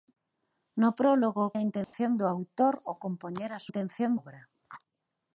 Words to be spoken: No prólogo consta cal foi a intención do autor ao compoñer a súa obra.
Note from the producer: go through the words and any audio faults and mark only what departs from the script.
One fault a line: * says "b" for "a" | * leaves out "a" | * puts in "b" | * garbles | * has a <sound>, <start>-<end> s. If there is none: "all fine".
* leaves out "consta cal foi"
* has a dropout, 1.8-1.9 s
* says "intención" for "súa"